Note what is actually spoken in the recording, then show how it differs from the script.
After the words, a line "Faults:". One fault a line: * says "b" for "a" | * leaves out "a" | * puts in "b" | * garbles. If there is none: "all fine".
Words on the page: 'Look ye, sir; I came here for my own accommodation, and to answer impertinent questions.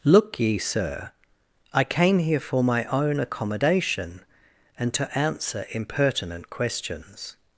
'Look ye, sir; I came here for my own accommodation, and to answer impertinent questions.
Faults:
all fine